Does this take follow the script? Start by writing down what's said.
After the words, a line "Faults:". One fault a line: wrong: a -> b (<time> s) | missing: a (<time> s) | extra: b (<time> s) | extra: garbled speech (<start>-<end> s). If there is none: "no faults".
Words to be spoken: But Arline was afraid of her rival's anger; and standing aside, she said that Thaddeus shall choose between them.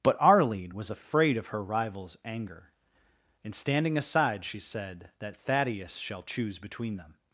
But Arline was afraid of her rival's anger; and standing aside, she said that Thaddeus shall choose between them.
Faults:
no faults